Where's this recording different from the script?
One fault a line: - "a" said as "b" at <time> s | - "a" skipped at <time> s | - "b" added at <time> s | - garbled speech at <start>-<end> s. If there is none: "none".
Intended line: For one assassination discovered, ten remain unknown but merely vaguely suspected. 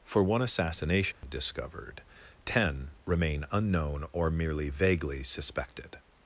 - "but" said as "or" at 4.1 s